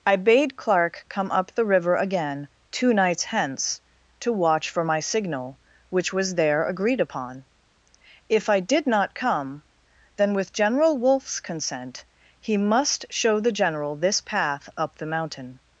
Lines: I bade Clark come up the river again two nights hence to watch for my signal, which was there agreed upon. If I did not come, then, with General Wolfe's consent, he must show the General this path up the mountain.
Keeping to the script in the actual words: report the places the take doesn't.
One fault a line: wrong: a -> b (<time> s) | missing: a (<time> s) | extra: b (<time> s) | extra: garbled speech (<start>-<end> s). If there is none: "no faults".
no faults